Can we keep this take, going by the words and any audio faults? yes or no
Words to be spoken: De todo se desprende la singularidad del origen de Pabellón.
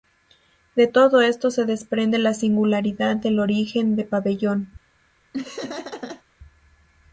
no